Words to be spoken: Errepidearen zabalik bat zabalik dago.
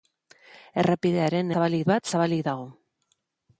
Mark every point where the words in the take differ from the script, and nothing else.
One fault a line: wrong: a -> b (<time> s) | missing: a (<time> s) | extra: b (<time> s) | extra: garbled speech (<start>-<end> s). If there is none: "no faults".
no faults